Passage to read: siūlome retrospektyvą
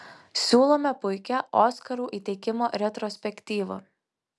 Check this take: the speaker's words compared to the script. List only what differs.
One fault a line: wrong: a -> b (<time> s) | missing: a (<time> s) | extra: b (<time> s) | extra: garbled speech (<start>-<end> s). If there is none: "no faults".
extra: puikią oskarų įteikimo (1.0 s)